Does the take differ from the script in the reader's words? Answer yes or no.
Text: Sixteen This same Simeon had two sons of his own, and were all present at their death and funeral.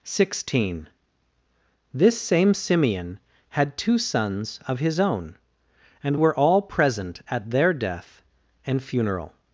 no